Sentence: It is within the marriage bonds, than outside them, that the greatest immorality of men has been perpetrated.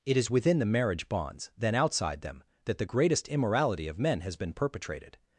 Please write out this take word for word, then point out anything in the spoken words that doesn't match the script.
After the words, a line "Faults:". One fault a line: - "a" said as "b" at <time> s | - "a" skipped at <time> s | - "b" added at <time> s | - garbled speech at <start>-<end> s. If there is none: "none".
It is within the marriage bonds, than outside them, that the greatest immorality of men has been perpetrated.
Faults:
none